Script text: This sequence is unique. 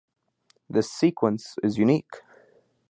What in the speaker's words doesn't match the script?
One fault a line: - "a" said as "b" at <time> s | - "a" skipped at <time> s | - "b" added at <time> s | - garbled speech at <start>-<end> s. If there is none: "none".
none